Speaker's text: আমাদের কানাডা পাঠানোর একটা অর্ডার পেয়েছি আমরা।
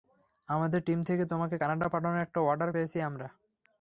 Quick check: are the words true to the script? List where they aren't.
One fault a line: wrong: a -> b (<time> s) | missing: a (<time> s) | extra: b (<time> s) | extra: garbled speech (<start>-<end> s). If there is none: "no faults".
extra: টিম থেকে তোমাকে (0.9 s)